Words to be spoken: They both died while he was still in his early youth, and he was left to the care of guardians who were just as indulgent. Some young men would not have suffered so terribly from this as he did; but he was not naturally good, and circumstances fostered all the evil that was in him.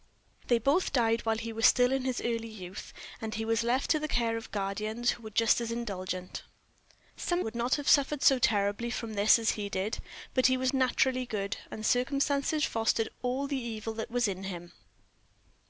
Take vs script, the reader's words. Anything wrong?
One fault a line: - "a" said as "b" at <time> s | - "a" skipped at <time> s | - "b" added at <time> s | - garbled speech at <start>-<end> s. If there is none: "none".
- "young men" skipped at 7.5 s
- "not" skipped at 10.7 s